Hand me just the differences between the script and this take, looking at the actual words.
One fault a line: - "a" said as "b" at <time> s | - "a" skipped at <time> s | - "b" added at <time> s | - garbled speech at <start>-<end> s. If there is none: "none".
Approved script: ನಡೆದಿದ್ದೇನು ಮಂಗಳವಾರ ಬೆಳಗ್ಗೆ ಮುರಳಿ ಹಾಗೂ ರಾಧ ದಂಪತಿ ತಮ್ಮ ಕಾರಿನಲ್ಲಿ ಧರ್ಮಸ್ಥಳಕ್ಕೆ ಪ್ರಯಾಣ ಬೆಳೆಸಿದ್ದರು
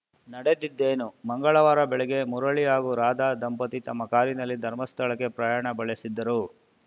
none